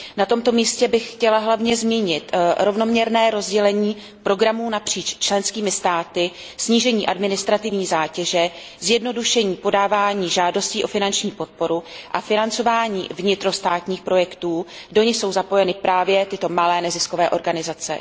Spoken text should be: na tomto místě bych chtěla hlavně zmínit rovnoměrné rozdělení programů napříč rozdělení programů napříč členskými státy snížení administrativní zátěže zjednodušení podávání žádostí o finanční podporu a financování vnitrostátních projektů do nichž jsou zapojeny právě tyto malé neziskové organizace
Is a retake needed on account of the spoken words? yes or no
yes